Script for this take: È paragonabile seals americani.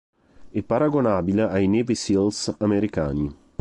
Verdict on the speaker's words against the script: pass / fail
fail